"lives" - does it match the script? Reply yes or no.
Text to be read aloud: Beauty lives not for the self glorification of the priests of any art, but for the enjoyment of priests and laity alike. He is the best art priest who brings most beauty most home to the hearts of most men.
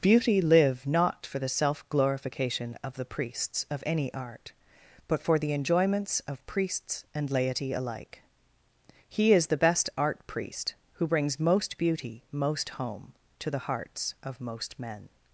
no